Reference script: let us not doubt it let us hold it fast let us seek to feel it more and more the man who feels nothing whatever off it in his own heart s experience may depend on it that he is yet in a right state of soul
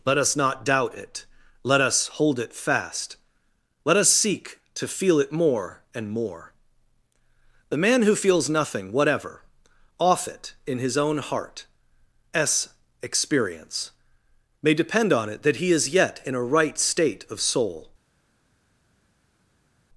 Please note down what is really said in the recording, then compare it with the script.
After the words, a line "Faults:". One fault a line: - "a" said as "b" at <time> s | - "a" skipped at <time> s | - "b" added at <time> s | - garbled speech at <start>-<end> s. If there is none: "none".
let us not doubt it let us hold it fast let us seek to feel it more and more the man who feels nothing whatever off it in his own heart s experience may depend on it that he is yet in a right state of soul
Faults:
none